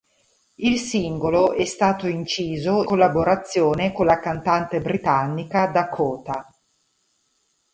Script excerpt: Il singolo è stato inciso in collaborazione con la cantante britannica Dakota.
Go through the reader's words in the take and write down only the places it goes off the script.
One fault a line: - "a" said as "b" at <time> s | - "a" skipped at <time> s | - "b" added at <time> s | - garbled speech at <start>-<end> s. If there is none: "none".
- "in" skipped at 2.8 s